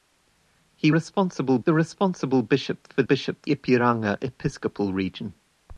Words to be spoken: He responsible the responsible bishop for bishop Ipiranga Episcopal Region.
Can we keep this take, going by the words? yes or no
yes